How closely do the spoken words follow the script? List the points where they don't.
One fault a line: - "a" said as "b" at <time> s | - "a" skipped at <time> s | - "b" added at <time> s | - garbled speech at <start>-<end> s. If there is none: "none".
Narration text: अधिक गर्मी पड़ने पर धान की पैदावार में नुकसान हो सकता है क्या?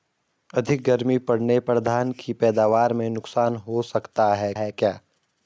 - "है" added at 4.5 s